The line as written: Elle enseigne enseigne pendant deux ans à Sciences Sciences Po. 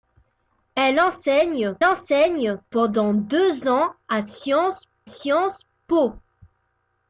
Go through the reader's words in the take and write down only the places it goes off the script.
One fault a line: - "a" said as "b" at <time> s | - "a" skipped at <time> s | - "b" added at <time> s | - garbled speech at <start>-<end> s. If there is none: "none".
none